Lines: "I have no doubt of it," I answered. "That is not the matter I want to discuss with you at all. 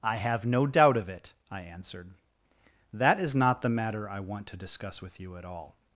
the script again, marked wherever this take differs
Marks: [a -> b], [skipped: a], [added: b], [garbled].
"I have no doubt of it," I answered. "That is not the matter I want to discuss with you at all.